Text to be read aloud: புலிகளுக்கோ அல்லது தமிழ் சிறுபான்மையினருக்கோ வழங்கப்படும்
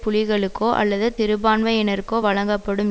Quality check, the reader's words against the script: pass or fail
fail